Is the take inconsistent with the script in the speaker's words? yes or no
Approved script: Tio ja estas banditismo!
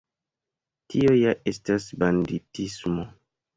no